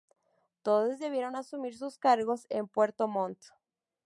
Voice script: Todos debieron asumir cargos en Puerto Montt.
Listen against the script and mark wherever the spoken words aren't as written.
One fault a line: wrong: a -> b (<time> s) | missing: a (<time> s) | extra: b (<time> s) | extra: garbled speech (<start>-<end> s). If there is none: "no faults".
extra: sus (1.8 s)